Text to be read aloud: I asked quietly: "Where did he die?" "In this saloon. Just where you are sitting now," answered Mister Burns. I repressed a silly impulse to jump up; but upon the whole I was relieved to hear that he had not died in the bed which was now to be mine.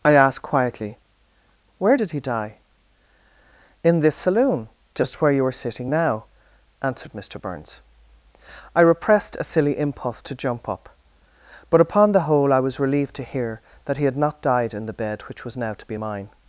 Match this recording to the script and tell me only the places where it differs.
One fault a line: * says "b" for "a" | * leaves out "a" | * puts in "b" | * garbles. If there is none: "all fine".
all fine